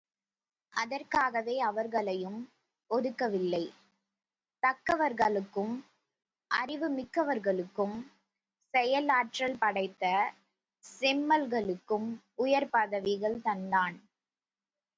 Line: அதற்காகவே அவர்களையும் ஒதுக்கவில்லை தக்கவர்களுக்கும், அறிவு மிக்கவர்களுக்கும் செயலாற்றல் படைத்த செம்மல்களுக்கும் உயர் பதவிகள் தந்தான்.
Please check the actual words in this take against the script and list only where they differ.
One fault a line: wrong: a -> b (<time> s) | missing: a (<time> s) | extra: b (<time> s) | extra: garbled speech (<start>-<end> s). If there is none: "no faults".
no faults